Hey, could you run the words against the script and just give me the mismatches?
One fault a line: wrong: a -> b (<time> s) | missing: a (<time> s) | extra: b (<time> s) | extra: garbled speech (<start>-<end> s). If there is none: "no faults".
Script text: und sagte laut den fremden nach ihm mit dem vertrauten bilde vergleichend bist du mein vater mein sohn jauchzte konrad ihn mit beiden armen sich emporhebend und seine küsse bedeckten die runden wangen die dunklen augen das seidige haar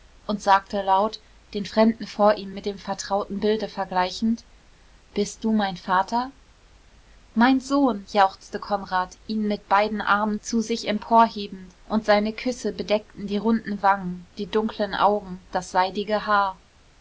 wrong: nach -> vor (2.1 s)
extra: zu (10.4 s)